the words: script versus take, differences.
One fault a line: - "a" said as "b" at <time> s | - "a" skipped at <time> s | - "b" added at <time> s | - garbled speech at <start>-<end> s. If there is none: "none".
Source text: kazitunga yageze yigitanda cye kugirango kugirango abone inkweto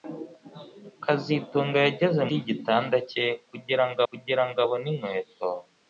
none